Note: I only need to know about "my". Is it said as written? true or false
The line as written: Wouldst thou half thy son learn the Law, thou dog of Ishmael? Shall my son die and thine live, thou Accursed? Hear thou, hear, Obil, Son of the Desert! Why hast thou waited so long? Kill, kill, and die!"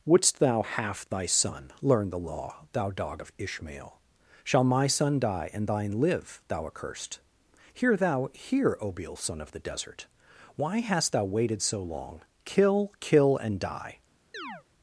true